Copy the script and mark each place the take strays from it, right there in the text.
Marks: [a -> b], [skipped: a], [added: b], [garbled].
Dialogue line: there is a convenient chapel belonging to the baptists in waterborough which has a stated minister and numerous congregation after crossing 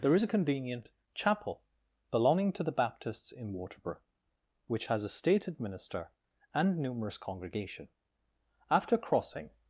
there is a convenient chapel belonging to the baptists in waterborough which has a stated minister and numerous congregation after crossing